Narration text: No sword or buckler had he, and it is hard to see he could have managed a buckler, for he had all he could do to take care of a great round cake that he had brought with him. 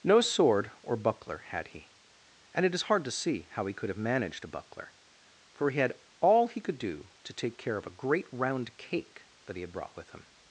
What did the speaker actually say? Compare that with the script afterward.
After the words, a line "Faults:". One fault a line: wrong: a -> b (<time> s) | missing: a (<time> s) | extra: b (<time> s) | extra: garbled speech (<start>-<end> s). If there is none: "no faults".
No sword or buckler had he, and it is hard to see how he could have managed a buckler, for he had all he could do to take care of a great round cake that he had brought with him.
Faults:
extra: how (3.5 s)